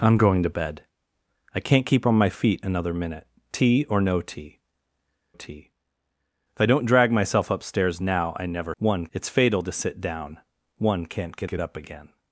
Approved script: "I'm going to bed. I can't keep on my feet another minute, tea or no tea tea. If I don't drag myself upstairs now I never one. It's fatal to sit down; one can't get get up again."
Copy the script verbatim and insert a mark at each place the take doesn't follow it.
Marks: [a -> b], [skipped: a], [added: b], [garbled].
"I'm going to bed. I can't keep on my feet another minute, tea or no tea tea. If I don't drag myself upstairs now I never one. It's fatal to sit down; one can't get get up again."